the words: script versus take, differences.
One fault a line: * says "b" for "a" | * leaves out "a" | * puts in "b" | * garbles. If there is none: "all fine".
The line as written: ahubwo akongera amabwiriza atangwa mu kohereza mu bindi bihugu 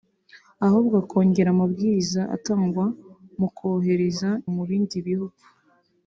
all fine